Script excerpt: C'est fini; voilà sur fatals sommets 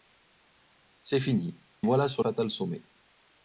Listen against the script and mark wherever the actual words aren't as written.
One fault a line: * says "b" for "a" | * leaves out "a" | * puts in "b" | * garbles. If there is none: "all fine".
all fine